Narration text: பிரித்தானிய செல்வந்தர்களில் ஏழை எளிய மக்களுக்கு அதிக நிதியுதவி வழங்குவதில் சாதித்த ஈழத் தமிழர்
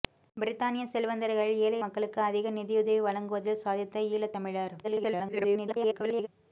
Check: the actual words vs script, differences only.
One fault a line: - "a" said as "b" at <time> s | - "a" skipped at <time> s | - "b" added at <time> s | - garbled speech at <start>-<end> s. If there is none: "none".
- "எளிய" skipped at 1.8 s
- garbled speech at 4.8-6.3 s